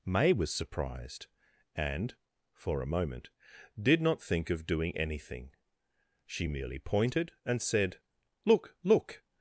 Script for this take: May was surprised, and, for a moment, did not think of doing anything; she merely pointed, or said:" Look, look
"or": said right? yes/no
no